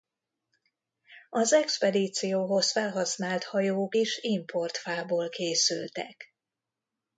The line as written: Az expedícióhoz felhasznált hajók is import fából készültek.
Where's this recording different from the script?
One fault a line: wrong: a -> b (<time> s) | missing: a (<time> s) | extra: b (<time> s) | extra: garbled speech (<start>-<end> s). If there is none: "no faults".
no faults